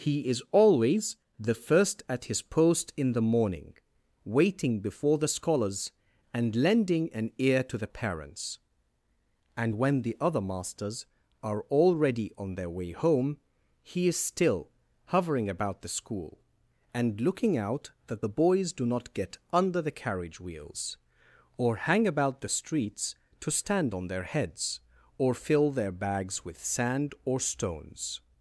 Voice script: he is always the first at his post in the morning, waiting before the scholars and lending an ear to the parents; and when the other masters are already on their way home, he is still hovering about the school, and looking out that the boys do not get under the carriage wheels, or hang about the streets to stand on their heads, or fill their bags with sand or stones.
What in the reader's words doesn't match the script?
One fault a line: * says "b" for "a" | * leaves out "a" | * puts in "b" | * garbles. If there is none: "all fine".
all fine